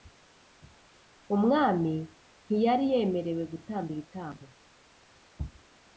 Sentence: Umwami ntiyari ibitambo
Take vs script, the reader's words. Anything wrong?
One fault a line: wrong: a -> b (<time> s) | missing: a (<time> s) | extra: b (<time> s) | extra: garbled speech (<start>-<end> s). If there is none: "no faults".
extra: yemerewe gutamba (2.9 s)